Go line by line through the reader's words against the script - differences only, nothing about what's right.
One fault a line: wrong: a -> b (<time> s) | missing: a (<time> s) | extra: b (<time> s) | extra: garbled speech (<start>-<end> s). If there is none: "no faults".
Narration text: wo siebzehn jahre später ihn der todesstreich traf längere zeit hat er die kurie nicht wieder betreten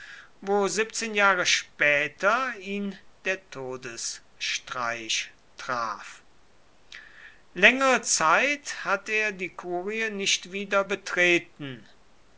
no faults